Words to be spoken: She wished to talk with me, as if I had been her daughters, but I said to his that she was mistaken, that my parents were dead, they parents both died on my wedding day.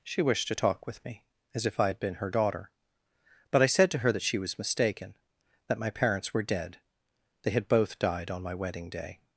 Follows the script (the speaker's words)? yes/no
no